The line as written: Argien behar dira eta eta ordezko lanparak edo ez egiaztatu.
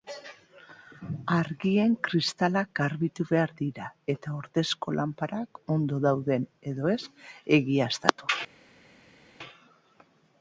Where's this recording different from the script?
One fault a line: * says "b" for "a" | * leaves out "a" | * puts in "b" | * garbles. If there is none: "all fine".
* puts in "kristalak garbitu"
* leaves out "eta"
* puts in "ondo dauden"